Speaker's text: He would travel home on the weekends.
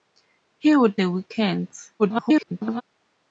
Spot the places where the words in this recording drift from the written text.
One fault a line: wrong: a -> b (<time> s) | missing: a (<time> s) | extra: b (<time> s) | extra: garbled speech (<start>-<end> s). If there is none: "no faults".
missing: travel home on (1.0 s)
extra: garbled speech (2.0-2.8 s)